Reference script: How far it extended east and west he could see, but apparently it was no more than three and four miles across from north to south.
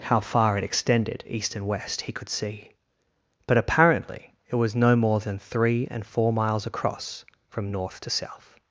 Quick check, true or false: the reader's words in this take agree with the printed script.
true